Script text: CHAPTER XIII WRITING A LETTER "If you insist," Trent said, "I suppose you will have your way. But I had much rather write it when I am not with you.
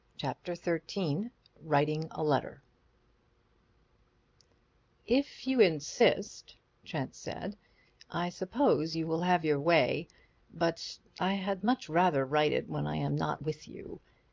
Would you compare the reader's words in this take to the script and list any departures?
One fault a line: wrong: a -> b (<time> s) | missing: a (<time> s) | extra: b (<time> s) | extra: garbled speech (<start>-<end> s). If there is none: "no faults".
no faults